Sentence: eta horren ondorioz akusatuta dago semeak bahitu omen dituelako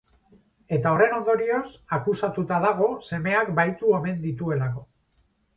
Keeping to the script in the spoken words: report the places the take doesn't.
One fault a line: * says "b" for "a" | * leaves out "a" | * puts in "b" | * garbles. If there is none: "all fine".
all fine